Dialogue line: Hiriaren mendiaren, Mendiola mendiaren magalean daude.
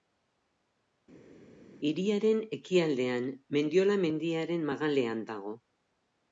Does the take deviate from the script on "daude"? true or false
true